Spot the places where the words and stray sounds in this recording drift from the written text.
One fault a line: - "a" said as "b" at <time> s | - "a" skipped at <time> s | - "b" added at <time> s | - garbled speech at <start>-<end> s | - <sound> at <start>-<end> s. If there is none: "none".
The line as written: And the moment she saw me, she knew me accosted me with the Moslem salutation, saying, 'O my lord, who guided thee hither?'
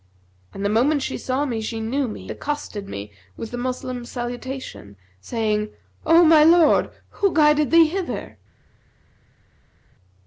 none